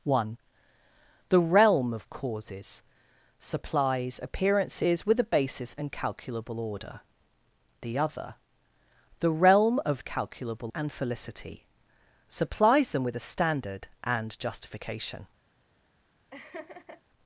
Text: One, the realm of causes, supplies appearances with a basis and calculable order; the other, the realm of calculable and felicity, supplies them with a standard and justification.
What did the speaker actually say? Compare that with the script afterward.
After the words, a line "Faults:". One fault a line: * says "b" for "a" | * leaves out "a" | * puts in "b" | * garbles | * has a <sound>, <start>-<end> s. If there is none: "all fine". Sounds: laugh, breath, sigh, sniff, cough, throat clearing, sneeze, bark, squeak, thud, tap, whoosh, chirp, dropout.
One, the realm of causes, supplies appearances with a basis and calculable order; the other, the realm of calculable and felicity, supplies them with a standard and justification.
Faults:
* has a laugh, 16.3-17.0 s